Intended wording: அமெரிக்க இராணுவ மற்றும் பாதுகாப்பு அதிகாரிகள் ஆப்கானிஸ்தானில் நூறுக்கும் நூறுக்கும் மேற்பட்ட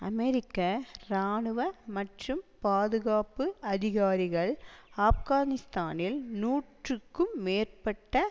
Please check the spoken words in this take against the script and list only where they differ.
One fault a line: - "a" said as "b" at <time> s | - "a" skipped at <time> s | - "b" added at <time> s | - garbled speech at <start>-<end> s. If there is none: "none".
- "நூறுக்கும்" skipped at 7.3 s